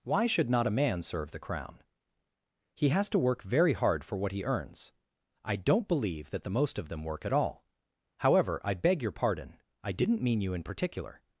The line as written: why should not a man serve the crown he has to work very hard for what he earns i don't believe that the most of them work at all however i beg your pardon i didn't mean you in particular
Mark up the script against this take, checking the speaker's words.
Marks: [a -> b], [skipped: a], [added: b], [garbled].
why should not a man serve the crown he has to work very hard for what he earns i don't believe that the most of them work at all however i beg your pardon i didn't mean you in particular